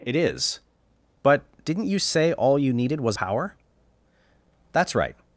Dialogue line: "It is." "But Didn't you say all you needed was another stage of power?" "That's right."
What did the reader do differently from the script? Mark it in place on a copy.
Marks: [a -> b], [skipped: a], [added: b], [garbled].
"It is." "But Didn't you say all you needed was [skipped: another stage of] power?" "That's right."